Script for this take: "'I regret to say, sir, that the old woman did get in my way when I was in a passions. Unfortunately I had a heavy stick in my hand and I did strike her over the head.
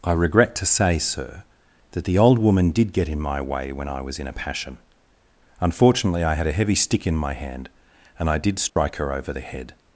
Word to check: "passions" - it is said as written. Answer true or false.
false